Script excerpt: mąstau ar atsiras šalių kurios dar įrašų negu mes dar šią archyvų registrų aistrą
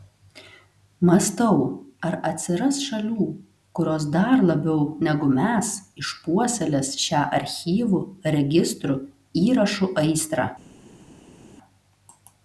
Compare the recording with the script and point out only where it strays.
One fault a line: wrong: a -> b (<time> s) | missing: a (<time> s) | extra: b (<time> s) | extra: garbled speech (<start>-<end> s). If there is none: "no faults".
wrong: įrašų -> labiau (4.5 s)
wrong: dar -> išpuoselės (6.0 s)
extra: įrašų (9.5 s)